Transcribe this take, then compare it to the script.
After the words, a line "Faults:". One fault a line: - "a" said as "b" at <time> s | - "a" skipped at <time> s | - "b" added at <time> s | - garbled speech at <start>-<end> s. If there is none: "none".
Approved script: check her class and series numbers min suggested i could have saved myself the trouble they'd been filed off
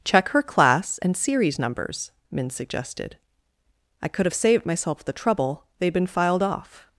check her class and series numbers min suggested i could have saved myself the trouble they'd been filed off
Faults:
none